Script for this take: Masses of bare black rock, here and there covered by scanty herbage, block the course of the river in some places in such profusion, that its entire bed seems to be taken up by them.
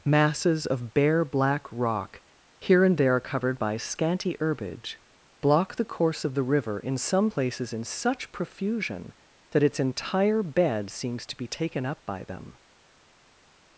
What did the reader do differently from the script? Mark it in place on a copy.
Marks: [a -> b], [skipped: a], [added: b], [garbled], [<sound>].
Masses of bare black rock, here and there covered by scanty herbage, block the course of the river in some places in such profusion, that its entire bed seems to be taken up by them.